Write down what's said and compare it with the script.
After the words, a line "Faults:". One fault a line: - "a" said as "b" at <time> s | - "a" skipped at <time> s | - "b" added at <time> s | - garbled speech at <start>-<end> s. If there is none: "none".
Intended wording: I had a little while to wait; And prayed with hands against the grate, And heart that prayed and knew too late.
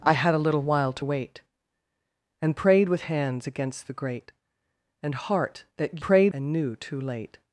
I had a little while to wait; And prayed with hands against the grate, And heart that prayed and knew too late.
Faults:
none